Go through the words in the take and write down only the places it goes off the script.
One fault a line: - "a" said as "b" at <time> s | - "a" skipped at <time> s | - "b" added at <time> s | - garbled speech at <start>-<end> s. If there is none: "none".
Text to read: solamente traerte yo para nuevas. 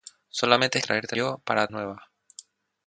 none